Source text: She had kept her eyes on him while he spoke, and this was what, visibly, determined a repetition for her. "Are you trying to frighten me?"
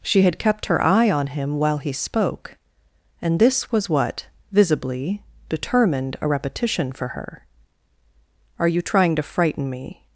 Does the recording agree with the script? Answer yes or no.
no